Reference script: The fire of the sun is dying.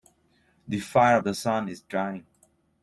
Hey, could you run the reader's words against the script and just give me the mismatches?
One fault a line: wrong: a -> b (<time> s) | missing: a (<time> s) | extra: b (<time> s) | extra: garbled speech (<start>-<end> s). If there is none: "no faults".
no faults